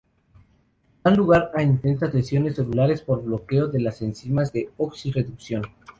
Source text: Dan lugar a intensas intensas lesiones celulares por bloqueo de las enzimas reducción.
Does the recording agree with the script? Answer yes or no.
no